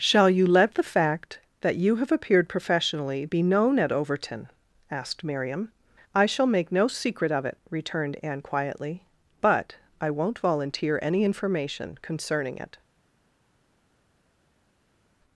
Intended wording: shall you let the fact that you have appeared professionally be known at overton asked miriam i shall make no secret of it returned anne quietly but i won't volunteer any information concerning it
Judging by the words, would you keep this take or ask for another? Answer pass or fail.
pass